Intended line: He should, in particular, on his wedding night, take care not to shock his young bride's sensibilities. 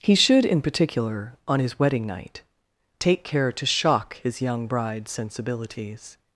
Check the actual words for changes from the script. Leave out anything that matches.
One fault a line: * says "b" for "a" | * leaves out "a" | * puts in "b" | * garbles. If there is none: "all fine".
* leaves out "not"